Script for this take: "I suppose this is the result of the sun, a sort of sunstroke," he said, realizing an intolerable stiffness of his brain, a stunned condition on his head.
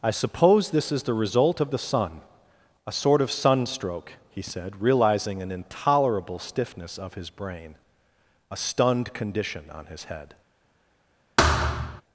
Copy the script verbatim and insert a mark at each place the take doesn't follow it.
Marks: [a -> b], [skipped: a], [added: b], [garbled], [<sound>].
"I suppose this is the result of the sun, a sort of sunstroke," he said, realizing an intolerable stiffness of his brain, a stunned condition on his head. [thud]